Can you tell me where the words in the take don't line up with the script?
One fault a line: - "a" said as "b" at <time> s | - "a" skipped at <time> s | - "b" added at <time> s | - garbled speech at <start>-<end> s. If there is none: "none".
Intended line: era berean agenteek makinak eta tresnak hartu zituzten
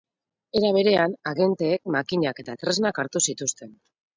none